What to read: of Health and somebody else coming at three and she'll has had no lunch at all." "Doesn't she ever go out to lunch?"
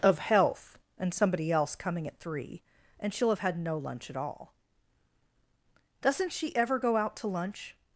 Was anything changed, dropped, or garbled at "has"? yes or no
yes